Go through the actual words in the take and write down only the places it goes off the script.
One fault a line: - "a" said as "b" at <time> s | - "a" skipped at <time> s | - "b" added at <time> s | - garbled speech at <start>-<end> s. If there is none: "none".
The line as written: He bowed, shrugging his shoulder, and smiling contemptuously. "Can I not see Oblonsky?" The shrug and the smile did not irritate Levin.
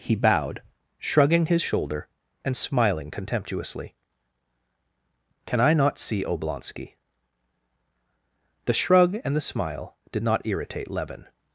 none